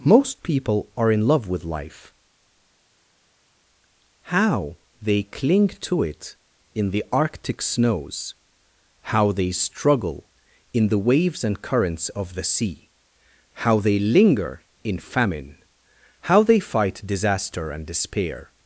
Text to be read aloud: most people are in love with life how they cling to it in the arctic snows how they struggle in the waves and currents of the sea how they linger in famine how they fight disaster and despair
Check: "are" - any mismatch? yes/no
no